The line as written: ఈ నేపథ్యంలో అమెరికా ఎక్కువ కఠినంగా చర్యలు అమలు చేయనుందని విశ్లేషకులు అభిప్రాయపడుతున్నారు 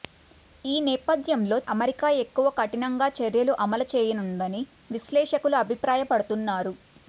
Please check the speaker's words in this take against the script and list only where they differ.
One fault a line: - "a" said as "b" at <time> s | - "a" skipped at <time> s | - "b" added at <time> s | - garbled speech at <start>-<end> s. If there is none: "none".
none